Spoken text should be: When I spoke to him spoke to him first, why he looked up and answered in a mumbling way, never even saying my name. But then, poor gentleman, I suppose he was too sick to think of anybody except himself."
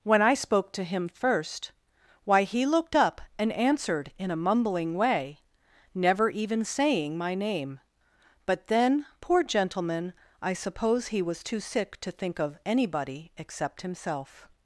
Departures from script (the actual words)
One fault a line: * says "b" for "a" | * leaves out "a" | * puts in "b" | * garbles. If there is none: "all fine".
* leaves out "spoke to him"